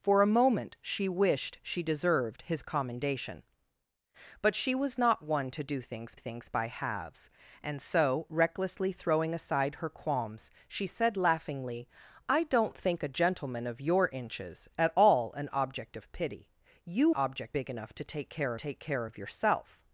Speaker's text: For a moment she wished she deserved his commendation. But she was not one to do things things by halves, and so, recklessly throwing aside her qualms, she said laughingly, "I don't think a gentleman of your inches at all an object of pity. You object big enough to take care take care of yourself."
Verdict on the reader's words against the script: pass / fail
pass